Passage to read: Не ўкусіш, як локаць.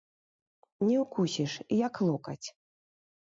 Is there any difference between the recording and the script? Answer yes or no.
no